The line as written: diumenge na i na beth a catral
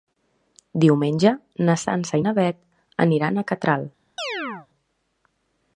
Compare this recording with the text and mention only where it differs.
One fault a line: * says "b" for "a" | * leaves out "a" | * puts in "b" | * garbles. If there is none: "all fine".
* puts in "sança"
* puts in "aniran"